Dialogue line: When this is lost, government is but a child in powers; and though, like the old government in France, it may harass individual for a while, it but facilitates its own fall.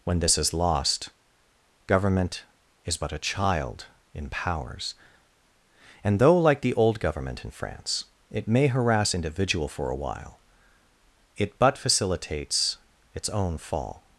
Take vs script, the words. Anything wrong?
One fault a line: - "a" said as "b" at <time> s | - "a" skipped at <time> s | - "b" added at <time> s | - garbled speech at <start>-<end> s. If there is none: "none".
none